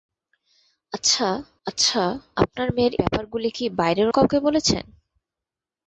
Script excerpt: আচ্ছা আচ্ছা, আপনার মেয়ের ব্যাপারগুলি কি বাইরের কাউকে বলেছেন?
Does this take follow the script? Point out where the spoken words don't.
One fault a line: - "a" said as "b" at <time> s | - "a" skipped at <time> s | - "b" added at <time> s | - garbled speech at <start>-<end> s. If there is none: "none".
none